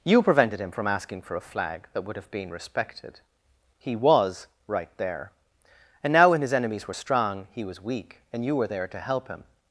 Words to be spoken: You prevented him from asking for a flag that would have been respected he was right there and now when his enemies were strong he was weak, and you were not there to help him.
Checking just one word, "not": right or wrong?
wrong